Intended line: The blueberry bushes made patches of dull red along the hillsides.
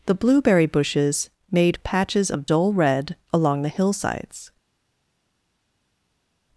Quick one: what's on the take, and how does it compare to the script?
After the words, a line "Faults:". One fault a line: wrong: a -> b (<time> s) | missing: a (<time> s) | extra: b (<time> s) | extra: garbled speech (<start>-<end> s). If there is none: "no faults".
The blueberry bushes made patches of dull red along the hillsides.
Faults:
no faults